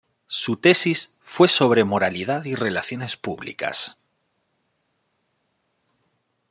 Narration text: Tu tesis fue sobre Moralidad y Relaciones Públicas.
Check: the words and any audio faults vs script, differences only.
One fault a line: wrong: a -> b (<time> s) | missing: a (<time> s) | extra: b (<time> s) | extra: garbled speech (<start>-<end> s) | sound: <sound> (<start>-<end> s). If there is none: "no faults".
wrong: Tu -> Su (0.2 s)